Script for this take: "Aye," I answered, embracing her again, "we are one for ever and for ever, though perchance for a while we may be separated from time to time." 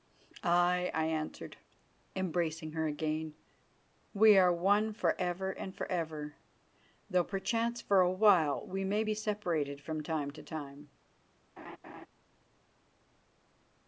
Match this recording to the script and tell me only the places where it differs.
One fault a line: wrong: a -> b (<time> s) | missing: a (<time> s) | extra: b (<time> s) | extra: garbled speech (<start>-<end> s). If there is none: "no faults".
no faults